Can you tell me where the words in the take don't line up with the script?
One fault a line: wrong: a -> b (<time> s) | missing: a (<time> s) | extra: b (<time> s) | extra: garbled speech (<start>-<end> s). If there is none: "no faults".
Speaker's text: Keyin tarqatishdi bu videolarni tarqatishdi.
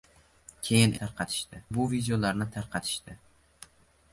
no faults